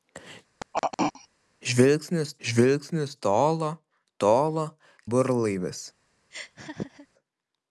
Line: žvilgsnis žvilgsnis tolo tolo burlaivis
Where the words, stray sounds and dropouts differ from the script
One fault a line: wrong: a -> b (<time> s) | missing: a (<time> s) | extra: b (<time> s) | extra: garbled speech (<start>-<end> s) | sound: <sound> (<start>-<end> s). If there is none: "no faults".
sound: throat clearing (0.6-1.3 s)
sound: laugh (6.3-7.1 s)